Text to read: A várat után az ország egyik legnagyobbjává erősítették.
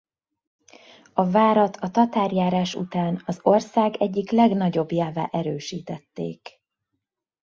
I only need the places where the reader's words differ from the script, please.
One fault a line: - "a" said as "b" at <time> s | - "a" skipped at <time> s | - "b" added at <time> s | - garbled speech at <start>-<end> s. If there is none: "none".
- "a tatárjárás" added at 1.8 s